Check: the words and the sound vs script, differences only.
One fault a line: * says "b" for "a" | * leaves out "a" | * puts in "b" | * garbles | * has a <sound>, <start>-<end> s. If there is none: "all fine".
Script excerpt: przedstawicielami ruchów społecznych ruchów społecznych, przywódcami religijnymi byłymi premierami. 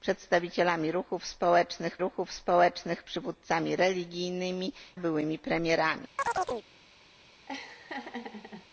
* has a chirp, 6.2-6.7 s
* has a laugh, 7.5-8.7 s